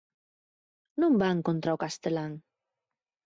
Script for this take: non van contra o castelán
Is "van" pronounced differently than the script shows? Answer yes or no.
no